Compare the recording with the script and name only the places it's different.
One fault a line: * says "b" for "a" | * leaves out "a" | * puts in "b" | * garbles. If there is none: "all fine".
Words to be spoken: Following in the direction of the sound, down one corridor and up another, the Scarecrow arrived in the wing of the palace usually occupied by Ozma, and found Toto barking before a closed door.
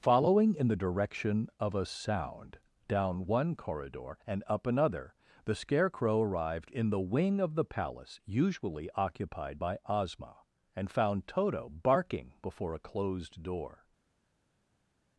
* says "a" for "the"